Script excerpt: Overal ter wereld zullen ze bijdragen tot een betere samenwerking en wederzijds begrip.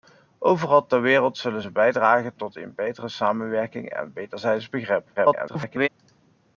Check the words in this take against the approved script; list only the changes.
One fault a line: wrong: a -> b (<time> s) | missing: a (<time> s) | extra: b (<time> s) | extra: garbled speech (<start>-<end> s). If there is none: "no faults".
extra: garbled speech (5.2-5.9 s)